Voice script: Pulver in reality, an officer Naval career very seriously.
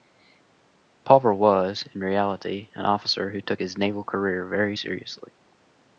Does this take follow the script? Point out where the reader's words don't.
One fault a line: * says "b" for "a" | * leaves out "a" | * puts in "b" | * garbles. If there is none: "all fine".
* puts in "was"
* puts in "who took his"